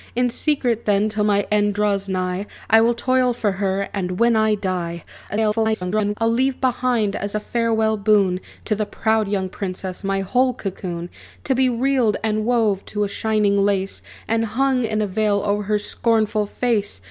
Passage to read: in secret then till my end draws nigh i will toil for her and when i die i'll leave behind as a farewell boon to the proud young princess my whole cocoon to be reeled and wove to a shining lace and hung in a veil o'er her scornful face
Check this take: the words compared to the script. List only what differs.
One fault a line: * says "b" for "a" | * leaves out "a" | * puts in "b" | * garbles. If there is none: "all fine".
* garbles